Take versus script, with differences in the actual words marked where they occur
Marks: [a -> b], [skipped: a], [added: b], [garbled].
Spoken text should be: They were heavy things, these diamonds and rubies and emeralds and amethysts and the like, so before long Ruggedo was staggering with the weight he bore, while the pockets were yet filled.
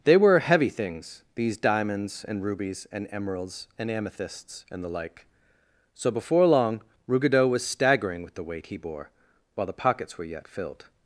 They were heavy things, these diamonds and rubies and emeralds and amethysts and the like, so before long Ruggedo was staggering with the weight he bore, while the pockets were yet filled.